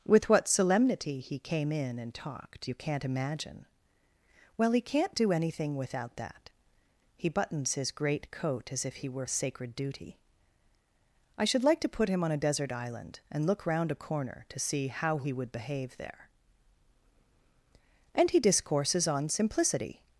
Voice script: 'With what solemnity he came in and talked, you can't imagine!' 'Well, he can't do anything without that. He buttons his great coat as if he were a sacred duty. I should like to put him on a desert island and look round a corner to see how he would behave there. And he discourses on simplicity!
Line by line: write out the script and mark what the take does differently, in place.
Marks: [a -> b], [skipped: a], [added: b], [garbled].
'With what solemnity he came in and talked, you can't imagine!' 'Well, he can't do anything without that. He buttons his great coat as if he were a sacred duty. I should like to put him on a desert island and look round a corner to see how he would behave there. And he discourses on simplicity!